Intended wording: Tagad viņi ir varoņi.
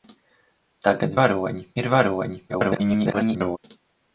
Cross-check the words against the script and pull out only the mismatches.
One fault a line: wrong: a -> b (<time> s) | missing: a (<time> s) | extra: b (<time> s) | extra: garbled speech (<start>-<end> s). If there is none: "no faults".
wrong: viņi -> varoņi (1.2 s)
extra: garbled speech (2.5-3.6 s)